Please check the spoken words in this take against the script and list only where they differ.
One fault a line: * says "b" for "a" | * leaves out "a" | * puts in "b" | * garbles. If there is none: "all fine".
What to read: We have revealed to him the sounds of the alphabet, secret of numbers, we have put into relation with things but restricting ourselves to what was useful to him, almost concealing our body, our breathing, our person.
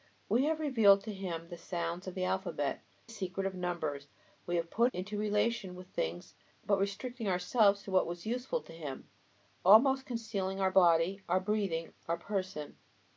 all fine